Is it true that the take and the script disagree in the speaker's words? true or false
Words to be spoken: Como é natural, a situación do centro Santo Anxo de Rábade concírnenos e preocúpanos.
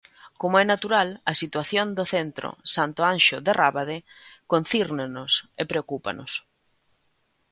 false